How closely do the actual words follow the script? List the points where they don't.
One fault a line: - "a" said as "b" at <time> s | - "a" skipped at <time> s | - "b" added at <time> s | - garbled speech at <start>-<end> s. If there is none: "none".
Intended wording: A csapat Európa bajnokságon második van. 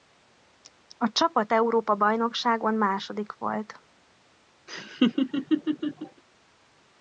- "van" said as "volt" at 3.3 s